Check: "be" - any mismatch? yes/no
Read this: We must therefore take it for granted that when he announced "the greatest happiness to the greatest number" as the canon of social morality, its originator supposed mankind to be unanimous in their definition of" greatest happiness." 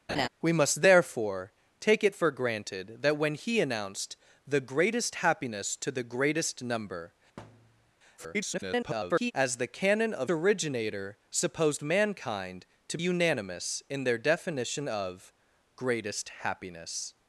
yes